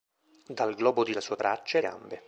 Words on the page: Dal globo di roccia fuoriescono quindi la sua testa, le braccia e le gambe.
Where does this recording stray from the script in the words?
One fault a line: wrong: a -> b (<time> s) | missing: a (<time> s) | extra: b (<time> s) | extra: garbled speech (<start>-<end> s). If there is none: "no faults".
missing: roccia fuoriescono quindi (1.1 s)
missing: testa le (1.4 s)
missing: le (1.8 s)